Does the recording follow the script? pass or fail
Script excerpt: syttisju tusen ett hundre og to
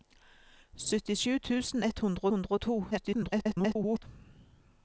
fail